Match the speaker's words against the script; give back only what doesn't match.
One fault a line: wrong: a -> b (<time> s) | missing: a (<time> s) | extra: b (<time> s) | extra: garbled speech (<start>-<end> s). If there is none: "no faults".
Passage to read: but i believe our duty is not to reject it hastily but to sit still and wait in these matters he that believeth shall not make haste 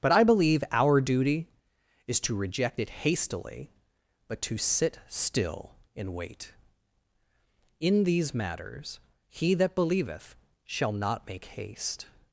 missing: not (2.2 s)